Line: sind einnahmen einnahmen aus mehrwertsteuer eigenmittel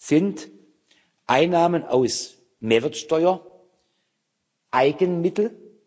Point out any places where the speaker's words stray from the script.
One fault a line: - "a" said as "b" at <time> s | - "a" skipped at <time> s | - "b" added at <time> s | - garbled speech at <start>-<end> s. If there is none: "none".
- "einnahmen" skipped at 1.8 s